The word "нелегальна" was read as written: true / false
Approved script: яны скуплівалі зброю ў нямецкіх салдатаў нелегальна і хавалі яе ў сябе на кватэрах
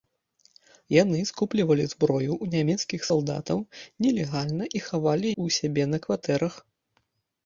true